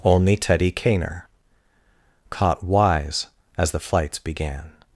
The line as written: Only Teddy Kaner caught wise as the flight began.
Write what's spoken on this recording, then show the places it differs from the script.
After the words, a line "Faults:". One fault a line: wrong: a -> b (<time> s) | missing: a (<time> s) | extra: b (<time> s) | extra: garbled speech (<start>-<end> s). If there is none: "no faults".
Only Teddy Kaner caught wise as the flights began.
Faults:
wrong: flight -> flights (3.8 s)